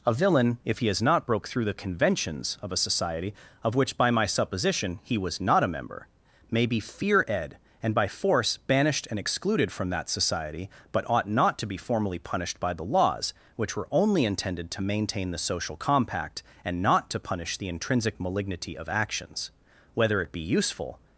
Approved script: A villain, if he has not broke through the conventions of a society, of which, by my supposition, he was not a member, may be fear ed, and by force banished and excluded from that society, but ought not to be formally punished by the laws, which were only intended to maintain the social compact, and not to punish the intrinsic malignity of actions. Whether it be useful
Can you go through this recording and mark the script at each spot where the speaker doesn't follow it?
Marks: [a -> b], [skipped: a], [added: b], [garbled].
A villain, if he has not broke through the conventions of a society, of which, by my supposition, he was not a member, may be fear ed, and by force banished and excluded from that society, but ought not to be formally punished by the laws, which were only intended to maintain the social compact, and not to punish the intrinsic malignity of actions. Whether it be useful